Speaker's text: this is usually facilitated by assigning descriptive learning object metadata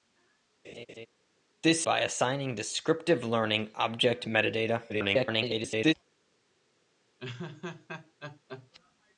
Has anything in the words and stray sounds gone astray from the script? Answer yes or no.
yes